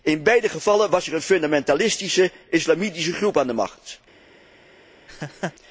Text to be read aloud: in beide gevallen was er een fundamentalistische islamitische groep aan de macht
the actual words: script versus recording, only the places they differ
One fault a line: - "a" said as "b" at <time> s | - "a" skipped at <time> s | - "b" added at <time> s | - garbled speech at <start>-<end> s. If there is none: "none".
none